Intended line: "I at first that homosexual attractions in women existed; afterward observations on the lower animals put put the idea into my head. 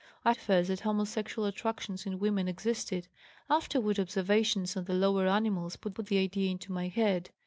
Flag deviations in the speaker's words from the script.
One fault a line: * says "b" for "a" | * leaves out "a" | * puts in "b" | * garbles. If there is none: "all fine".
all fine